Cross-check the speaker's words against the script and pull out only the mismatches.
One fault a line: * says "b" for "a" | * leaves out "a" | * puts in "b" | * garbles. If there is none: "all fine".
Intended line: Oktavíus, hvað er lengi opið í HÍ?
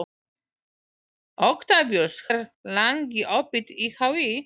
* leaves out "hvað"